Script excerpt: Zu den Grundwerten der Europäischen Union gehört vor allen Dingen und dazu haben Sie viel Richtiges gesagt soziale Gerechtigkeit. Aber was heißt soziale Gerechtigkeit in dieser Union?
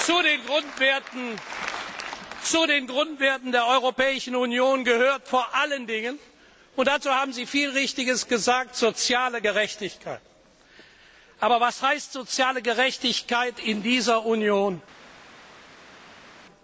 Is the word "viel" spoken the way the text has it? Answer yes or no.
yes